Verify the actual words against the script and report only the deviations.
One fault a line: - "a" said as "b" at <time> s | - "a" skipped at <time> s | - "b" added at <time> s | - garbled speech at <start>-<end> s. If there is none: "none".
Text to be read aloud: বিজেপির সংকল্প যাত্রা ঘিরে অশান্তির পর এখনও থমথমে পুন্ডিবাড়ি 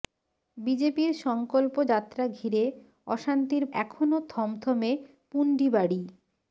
- "পর" skipped at 3.6 s